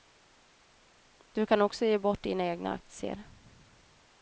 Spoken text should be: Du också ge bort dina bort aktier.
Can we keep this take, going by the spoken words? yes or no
no